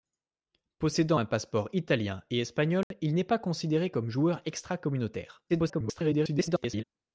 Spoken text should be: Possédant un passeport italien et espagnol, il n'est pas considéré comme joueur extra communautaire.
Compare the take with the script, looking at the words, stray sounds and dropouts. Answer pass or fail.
fail